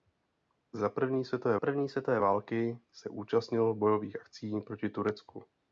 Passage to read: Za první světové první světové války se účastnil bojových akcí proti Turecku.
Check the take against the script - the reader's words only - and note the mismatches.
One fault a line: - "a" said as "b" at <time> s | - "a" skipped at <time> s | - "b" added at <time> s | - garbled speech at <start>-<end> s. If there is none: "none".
none